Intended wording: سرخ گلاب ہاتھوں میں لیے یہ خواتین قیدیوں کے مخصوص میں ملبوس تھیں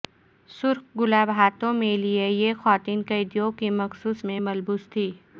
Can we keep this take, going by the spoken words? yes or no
yes